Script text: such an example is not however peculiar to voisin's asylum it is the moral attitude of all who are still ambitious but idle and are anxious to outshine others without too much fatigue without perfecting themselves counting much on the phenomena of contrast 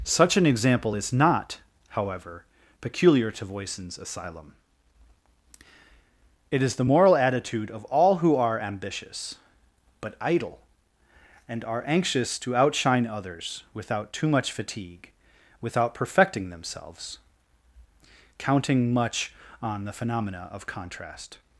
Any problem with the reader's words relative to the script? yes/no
yes